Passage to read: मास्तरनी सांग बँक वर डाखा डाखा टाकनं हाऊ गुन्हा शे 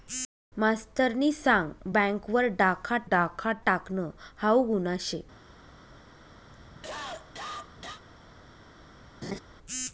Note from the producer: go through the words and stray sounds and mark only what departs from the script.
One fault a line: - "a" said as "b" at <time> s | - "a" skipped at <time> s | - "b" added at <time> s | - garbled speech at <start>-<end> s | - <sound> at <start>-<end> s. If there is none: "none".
- cough at 6.5-8.0 s
- laugh at 9.2-9.4 s